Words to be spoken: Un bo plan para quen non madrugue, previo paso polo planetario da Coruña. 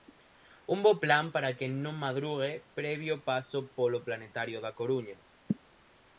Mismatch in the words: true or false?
false